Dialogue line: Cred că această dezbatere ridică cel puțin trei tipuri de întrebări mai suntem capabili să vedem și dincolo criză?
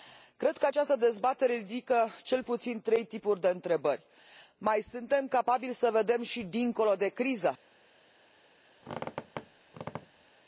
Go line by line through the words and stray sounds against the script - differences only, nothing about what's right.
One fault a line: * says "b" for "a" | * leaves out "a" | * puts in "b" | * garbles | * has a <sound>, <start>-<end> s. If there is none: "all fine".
* puts in "de"
* has a squeak, 8.8-10.3 s